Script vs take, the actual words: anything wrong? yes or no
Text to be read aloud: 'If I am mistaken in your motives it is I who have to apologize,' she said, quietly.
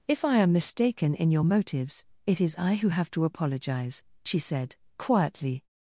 no